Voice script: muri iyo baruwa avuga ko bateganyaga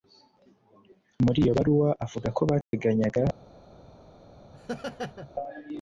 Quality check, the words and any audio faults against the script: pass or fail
fail